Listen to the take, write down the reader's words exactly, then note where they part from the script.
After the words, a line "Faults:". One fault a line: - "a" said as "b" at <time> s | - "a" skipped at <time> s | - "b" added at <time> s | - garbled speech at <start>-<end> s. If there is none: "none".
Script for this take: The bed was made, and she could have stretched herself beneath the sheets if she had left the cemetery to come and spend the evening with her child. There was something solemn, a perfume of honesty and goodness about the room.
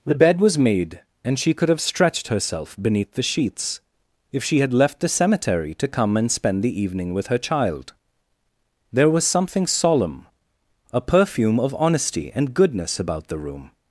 The bed was made, and she could have stretched herself beneath the sheets if she had left the cemetery to come and spend the evening with her child. There was something solemn, a perfume of honesty and goodness about the room.
Faults:
none